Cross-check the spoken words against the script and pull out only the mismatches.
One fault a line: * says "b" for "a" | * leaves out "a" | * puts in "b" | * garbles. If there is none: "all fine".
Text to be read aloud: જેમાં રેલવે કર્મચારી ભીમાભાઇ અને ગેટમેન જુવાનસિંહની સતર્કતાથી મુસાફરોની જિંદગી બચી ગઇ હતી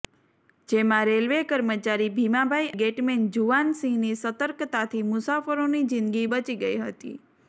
* leaves out "અને"